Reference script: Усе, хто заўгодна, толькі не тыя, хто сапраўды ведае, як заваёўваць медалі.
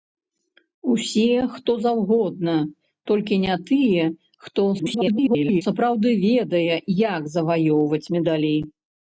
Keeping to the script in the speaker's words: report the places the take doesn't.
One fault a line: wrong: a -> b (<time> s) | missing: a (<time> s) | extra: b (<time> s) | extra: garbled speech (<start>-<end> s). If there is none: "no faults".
extra: garbled speech (4.8-5.6 s)